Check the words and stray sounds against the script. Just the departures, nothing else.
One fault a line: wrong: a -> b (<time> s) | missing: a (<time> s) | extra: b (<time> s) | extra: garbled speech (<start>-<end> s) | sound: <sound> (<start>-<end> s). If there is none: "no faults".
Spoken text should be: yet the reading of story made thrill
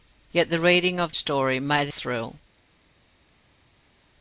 no faults